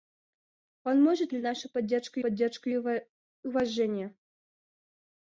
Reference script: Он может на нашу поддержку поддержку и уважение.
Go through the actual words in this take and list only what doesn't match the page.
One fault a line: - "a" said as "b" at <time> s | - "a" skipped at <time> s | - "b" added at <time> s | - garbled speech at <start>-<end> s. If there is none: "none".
none